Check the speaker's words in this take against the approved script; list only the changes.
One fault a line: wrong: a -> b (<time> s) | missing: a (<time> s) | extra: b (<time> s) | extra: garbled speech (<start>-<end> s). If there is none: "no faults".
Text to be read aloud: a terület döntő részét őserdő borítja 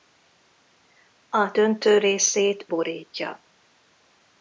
missing: terület (1.5 s)
missing: őserdő (2.7 s)